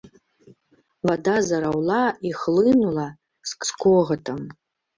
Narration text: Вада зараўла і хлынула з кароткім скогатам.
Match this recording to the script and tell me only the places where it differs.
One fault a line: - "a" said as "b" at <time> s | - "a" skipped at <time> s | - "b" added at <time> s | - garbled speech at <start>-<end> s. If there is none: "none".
- "кароткім" skipped at 3.6 s